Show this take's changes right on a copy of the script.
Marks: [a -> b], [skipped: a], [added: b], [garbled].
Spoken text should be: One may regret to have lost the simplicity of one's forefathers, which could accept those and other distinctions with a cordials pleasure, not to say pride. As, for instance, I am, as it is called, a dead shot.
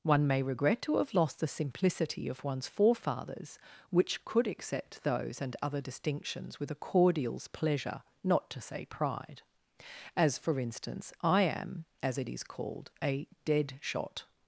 One may regret to have lost the simplicity of one's forefathers, which could accept those and other distinctions with a cordials pleasure, not to say pride. As, for instance, I am, as it is called, a dead shot.